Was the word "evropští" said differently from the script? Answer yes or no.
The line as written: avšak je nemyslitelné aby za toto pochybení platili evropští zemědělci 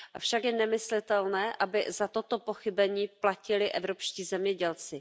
no